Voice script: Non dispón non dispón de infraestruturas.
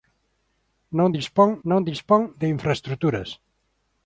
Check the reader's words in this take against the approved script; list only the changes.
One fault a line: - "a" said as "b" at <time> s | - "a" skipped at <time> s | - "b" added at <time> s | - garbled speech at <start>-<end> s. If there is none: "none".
none